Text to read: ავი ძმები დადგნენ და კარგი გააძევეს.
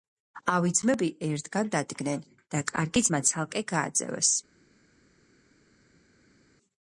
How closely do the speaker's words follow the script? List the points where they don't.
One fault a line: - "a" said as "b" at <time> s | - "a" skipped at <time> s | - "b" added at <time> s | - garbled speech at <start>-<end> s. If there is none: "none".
- "ერთგან" added at 1.3 s
- "ძმა ცალკე" added at 3.1 s